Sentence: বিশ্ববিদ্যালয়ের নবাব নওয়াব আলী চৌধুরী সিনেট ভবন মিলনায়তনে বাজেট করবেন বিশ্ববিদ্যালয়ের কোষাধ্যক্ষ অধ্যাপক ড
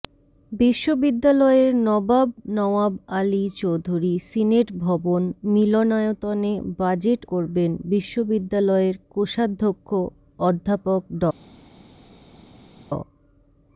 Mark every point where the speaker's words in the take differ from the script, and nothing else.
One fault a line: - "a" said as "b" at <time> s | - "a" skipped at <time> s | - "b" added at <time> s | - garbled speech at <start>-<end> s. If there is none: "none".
none